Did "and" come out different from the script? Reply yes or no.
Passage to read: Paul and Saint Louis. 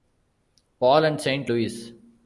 no